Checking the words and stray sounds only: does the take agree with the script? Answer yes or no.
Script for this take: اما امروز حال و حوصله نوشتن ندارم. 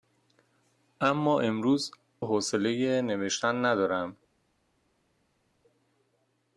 no